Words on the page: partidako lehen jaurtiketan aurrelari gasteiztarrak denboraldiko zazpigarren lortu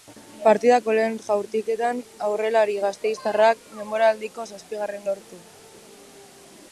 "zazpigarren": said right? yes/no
yes